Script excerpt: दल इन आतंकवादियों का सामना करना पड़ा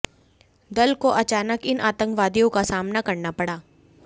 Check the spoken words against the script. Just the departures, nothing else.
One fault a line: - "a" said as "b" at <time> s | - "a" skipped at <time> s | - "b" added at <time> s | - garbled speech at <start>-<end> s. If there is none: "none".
- "को अचानक" added at 0.9 s